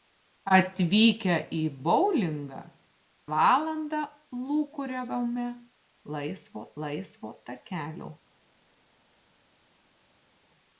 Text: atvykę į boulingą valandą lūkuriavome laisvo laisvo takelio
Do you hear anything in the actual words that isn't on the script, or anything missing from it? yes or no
no